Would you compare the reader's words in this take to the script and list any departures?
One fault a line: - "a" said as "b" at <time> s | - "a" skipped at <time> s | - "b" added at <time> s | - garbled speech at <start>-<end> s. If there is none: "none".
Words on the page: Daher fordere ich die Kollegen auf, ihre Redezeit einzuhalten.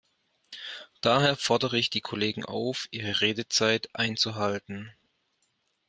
none